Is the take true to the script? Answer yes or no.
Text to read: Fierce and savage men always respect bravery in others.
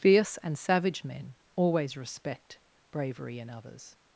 yes